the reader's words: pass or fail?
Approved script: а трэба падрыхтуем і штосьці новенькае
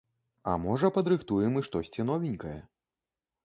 fail